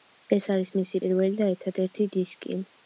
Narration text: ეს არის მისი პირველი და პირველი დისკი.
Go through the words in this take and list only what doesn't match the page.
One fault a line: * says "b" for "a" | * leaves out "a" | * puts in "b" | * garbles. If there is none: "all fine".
* says "ერთადერთი" for "პირველი"